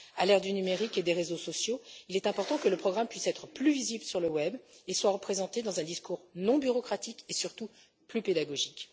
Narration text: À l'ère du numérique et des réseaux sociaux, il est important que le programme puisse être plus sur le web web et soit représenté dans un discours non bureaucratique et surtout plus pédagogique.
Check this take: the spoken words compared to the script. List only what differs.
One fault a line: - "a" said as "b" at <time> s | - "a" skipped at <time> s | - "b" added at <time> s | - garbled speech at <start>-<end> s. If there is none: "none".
- "visible" added at 3.7 s
- "web" skipped at 4.6 s